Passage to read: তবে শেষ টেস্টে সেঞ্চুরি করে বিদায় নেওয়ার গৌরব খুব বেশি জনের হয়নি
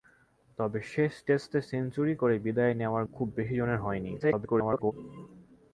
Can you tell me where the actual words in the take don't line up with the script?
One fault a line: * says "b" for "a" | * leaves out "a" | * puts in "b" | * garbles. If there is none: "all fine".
* leaves out "গৌরব"
* garbles